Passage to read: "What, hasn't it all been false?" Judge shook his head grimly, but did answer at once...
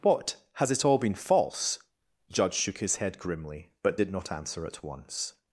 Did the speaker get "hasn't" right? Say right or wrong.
wrong